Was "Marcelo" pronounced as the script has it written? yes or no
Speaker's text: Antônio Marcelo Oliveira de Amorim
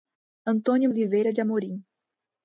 no